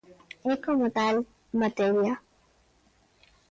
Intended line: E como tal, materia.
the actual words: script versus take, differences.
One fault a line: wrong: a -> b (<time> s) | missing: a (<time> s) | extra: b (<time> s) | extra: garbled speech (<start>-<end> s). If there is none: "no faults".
no faults